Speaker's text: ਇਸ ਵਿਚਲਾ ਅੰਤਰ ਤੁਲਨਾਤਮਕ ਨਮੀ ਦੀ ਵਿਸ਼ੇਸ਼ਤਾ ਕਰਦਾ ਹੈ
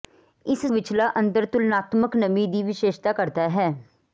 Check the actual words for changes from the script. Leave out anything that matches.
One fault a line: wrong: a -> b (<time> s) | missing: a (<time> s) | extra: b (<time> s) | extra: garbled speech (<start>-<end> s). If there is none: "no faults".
no faults